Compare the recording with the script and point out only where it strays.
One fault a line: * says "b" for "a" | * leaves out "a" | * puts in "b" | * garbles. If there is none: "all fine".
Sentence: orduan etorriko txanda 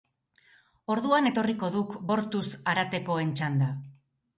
* puts in "duk bortuz haratekoen"